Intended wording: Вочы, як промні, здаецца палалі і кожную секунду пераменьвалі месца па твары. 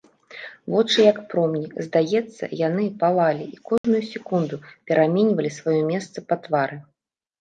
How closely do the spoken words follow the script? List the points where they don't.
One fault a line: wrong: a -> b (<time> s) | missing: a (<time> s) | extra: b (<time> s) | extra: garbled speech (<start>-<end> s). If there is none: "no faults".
extra: яны (2.7 s)
extra: сваё (5.6 s)